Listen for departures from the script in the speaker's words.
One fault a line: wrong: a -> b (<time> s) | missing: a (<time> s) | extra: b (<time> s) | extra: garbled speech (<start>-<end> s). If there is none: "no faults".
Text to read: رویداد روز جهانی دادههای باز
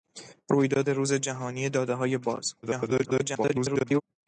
extra: garbled speech (2.6-4.0 s)